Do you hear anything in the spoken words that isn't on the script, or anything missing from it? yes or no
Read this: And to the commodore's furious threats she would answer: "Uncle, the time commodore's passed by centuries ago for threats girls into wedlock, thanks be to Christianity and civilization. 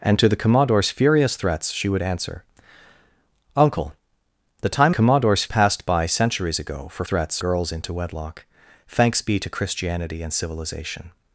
no